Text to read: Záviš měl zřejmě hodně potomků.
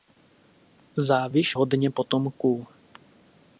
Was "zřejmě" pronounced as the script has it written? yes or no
no